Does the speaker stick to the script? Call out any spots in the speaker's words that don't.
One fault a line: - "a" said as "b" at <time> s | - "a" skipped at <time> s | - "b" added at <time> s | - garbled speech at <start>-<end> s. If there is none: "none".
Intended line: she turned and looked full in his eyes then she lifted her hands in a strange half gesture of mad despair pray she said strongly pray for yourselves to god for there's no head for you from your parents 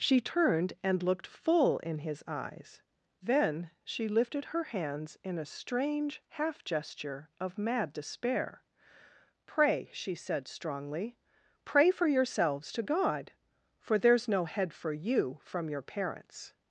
none